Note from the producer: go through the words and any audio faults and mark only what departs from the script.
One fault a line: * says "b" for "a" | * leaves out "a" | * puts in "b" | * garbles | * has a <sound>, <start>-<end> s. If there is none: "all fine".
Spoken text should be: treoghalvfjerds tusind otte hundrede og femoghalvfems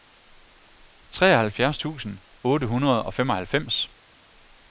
all fine